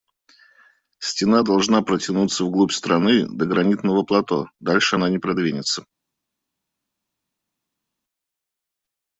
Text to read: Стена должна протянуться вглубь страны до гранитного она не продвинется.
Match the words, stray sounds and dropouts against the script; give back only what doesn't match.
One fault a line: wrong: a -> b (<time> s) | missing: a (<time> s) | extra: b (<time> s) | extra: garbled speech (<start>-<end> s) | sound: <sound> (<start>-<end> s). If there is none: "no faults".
extra: плато дальше (4.0 s)